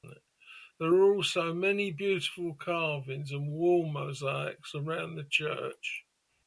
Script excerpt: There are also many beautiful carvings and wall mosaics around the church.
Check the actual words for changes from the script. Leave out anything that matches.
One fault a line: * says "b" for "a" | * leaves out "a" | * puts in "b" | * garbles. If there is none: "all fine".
all fine